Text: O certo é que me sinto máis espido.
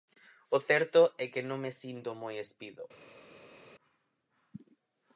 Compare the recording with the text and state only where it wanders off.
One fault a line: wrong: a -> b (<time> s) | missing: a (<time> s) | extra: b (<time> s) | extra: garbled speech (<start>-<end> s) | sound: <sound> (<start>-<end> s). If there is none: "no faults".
extra: non (1.5 s)
wrong: máis -> moi (2.2 s)